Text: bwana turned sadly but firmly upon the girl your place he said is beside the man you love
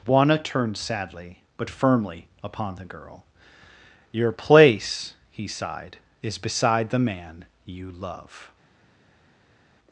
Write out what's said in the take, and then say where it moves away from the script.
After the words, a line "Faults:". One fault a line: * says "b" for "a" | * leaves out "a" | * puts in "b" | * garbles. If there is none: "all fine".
bwana turned sadly but firmly upon the girl your place he sighed is beside the man you love
Faults:
* says "sighed" for "said"